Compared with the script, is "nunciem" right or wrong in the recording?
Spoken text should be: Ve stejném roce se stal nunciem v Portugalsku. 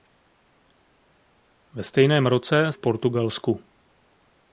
wrong